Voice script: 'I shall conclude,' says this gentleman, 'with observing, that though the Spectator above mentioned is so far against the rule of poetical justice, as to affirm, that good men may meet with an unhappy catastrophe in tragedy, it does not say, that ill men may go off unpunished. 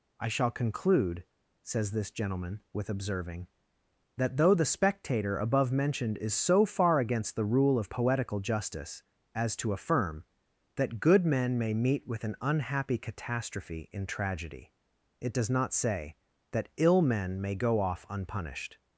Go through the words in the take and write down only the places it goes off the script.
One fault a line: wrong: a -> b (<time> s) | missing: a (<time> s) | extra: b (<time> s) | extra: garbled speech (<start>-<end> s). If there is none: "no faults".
no faults